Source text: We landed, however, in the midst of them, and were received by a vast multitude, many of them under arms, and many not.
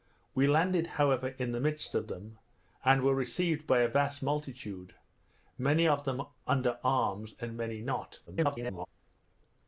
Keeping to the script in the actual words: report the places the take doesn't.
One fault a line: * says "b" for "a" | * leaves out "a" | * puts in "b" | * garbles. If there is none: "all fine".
* garbles